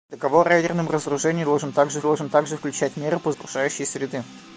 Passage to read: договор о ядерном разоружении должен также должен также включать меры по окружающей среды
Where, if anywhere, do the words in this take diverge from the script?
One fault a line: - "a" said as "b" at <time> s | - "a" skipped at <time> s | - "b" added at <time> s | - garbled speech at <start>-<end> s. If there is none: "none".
none